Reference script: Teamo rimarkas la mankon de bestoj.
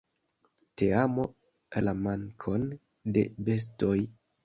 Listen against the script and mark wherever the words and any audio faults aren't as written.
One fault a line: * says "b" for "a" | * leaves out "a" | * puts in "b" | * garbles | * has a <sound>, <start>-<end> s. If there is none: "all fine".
* leaves out "rimarkas"